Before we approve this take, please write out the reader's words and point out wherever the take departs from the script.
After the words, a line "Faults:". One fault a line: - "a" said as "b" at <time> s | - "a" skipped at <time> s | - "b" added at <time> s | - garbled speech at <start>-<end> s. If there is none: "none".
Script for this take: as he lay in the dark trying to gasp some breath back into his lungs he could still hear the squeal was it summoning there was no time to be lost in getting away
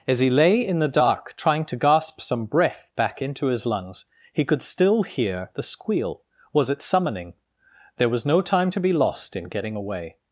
as he lay in the dark trying to gasp some breath back into his lungs he could still hear the squeal was it summoning there was no time to be lost in getting away
Faults:
none